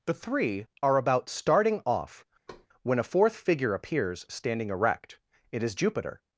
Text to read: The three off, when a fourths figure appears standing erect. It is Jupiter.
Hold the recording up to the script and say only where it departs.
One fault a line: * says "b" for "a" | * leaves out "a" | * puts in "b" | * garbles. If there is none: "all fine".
* puts in "are about starting"
* says "fourth" for "fourths"